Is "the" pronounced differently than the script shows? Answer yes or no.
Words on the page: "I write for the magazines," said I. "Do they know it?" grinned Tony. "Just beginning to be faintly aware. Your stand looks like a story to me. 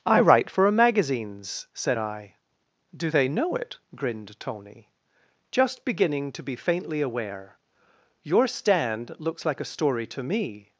yes